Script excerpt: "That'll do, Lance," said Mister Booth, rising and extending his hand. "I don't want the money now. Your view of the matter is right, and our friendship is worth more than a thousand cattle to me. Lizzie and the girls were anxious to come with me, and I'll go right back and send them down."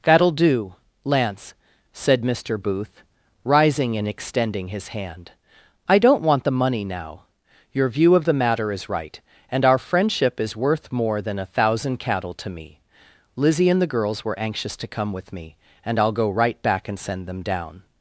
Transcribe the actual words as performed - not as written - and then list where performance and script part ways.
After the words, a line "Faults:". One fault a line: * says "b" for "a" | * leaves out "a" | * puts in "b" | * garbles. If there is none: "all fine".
"That'll do, Lance," said Mister Booth, rising and extending his hand. "I don't want the money now. Your view of the matter is right, and our friendship is worth more than a thousand cattle to me. Lizzie and the girls were anxious to come with me, and I'll go right back and send them down."
Faults:
all fine